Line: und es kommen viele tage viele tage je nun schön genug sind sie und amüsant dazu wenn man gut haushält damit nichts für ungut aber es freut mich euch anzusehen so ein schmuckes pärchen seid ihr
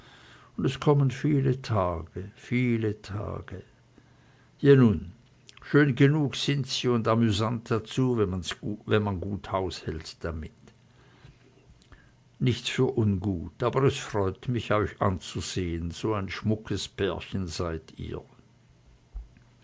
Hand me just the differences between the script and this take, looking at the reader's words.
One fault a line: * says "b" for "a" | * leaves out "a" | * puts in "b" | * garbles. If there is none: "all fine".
all fine